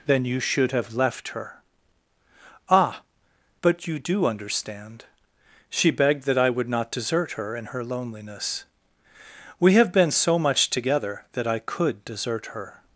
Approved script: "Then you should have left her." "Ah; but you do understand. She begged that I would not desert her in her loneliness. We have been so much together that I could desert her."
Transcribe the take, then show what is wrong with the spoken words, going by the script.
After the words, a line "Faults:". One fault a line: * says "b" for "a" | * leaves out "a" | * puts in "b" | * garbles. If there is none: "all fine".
"Then you should have left her." "Ah; but you do understand. She begged that I would not desert her in her loneliness. We have been so much together that I could desert her."
Faults:
all fine